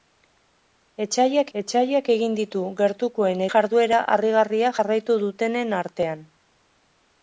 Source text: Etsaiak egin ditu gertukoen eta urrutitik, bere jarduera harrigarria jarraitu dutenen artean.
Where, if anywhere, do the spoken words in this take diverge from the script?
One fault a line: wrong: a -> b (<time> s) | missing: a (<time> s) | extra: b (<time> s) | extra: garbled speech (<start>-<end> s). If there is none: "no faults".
extra: etsaiak (1.6 s)
missing: eta urrutitik bere (3.4 s)